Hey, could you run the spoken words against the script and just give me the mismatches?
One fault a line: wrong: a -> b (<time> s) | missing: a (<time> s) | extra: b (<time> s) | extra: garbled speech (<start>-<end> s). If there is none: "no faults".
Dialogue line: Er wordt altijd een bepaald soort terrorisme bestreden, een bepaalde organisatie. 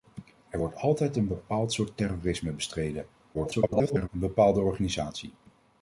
extra: garbled speech (3.3-4.1 s)